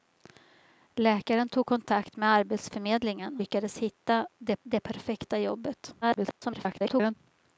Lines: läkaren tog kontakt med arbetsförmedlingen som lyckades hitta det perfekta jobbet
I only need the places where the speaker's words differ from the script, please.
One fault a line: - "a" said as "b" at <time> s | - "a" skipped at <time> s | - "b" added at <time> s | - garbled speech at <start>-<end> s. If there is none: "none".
- "som" skipped at 3.4 s
- "det" added at 4.6 s
- garbled speech at 6.0-7.2 s